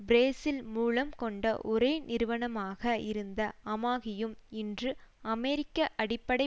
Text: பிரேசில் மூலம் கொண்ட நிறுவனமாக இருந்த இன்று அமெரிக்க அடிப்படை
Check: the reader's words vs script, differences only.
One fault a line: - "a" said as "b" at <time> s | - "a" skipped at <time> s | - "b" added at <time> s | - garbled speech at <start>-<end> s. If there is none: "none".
- "ஒரே" added at 1.6 s
- "அமாகியும்" added at 3.6 s